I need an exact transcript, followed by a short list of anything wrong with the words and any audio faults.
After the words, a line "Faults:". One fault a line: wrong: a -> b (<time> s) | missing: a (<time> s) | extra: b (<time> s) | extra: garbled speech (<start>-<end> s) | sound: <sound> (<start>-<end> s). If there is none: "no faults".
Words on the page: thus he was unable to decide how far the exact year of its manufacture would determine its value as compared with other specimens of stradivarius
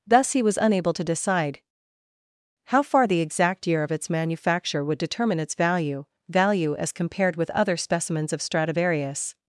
thus he was unable to decide how far the exact year of its manufacture would determine its value value as compared with other specimens of stradivarius
Faults:
extra: value (6.3 s)